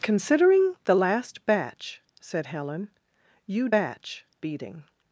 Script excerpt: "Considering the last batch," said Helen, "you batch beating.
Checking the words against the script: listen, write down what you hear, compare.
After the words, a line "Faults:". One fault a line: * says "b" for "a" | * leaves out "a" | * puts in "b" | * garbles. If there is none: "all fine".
"Considering the last batch," said Helen, "you batch beating.
Faults:
all fine